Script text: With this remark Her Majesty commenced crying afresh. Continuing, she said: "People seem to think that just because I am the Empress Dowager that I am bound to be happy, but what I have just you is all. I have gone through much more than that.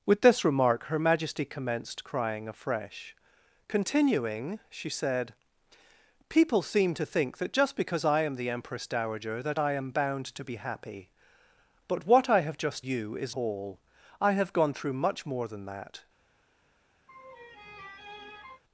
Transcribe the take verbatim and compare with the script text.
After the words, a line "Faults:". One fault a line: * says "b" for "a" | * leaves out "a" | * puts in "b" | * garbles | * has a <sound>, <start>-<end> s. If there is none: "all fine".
With this remark Her Majesty commenced crying afresh. Continuing, she said: "People seem to think that just because I am the Empress Dowager that I am bound to be happy, but what I have just you is all. I have gone through much more than that.
Faults:
* has a laugh, 17.1-18.6 s